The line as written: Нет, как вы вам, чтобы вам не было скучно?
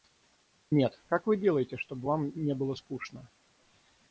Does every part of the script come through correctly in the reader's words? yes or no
no